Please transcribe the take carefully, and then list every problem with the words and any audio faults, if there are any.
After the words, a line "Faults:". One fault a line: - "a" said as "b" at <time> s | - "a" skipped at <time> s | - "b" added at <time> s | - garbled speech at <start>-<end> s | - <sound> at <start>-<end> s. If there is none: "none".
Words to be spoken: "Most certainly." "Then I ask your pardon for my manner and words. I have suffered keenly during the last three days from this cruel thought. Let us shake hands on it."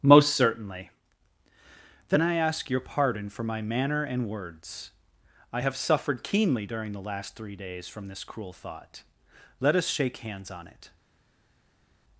"Most certainly." "Then I ask your pardon for my manner and words. I have suffered keenly during the last three days from this cruel thought. Let us shake hands on it."
Faults:
none